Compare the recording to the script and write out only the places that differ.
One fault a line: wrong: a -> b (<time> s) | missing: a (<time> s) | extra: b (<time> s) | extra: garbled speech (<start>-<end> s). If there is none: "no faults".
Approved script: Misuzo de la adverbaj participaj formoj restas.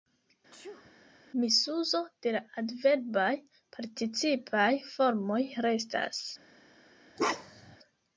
no faults